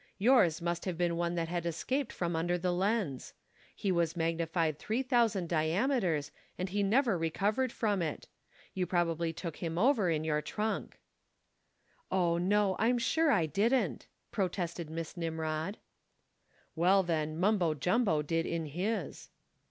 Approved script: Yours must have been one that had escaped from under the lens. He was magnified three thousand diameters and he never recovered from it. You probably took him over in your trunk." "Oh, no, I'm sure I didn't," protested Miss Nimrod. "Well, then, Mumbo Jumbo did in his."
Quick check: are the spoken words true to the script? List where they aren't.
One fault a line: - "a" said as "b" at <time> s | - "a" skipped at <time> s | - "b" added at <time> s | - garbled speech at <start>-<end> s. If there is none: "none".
none